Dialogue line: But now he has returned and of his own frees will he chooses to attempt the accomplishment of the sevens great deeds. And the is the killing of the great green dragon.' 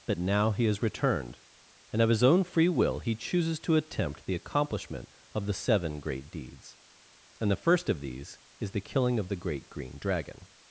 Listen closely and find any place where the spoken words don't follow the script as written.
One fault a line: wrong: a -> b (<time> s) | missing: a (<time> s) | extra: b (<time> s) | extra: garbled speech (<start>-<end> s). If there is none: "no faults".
wrong: frees -> free (2.4 s)
wrong: sevens -> seven (5.5 s)
extra: first of these (7.5 s)